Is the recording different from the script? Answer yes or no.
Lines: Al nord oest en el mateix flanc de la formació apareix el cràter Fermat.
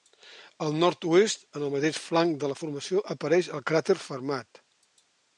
no